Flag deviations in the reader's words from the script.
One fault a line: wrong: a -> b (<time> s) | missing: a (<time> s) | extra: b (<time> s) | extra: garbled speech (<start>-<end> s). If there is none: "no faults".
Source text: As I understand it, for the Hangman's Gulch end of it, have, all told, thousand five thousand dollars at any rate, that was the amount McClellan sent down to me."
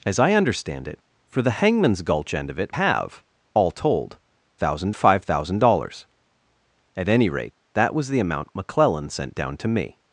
no faults